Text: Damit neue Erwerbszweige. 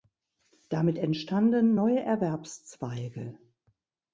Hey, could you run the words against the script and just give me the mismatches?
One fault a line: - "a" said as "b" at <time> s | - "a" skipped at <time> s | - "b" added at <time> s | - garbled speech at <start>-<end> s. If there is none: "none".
- "entstanden" added at 1.0 s